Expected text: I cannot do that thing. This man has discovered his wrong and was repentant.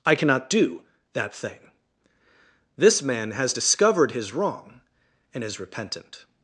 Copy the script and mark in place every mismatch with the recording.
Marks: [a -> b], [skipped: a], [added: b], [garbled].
I cannot do that thing. This man has discovered his wrong and [was -> is] repentant.